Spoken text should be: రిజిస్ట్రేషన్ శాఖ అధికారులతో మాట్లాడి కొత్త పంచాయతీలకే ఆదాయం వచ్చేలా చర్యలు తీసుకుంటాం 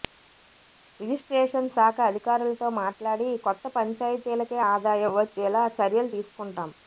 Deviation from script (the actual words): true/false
false